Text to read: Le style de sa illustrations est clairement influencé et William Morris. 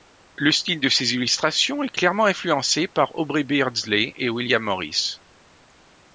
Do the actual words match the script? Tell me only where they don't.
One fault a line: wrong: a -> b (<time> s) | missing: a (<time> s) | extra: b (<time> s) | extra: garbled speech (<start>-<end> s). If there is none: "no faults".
wrong: sa -> ses (0.9 s)
extra: par Aubrey Beardsley (2.9 s)